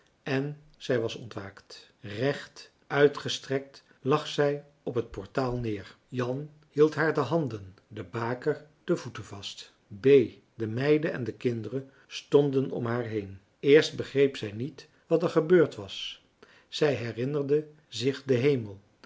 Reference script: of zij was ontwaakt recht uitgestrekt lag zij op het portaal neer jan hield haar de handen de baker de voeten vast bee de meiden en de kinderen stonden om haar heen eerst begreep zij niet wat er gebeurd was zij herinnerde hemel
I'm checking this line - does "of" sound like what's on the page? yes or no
no